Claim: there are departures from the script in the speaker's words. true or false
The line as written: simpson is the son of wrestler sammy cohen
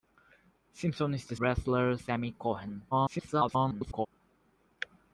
true